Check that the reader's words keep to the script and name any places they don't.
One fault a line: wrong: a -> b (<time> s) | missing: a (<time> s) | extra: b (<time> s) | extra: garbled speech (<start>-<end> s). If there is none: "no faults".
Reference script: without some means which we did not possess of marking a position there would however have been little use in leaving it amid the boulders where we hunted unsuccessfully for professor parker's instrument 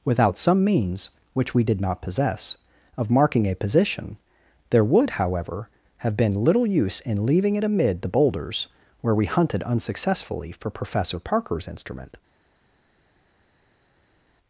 no faults